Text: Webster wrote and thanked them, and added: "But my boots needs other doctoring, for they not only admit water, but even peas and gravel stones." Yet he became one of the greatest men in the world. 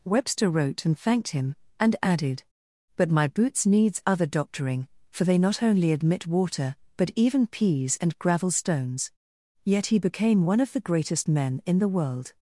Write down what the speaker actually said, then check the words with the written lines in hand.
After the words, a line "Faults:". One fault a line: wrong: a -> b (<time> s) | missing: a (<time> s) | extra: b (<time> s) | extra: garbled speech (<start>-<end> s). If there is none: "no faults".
Webster wrote and thanked him, and added: "But my boots needs other doctoring, for they not only admit water, but even peas and gravel stones." Yet he became one of the greatest men in the world.
Faults:
wrong: them -> him (1.3 s)